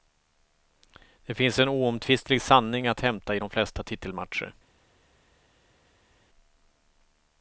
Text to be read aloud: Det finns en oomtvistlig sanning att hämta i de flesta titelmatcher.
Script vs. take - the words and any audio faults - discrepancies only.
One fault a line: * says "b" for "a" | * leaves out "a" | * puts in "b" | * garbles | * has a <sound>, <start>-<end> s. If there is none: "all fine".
all fine